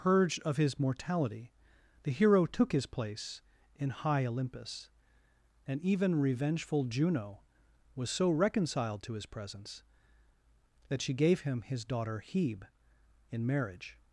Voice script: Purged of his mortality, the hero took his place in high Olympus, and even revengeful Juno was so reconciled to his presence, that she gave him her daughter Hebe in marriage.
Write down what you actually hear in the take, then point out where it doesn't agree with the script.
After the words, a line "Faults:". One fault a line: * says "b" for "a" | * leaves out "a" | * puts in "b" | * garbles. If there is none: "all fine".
Purged of his mortality, the hero took his place in high Olympus, and even revengeful Juno was so reconciled to his presence, that she gave him his daughter Hebe in marriage.
Faults:
* says "his" for "her"